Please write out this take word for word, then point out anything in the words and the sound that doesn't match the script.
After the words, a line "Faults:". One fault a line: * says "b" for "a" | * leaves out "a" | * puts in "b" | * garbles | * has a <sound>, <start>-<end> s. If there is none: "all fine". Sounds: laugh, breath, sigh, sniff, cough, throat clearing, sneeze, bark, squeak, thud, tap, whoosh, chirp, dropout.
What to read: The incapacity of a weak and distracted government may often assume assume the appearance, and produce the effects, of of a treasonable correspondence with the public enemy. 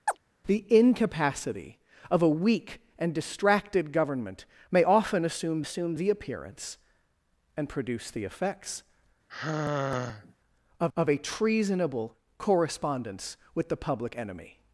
The incapacity of a weak and distracted government may often assume assume the appearance, and produce the effects, of of a treasonable correspondence with the public enemy.
Faults:
* has a chirp, 0.1-0.2 s
* has a sigh, 9.3-10.3 s